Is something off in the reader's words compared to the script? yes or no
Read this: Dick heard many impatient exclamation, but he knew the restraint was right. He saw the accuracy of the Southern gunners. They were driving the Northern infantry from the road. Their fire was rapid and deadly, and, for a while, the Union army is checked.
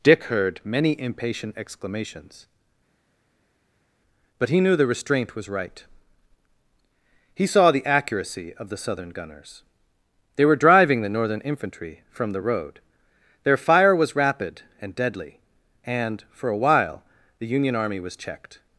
yes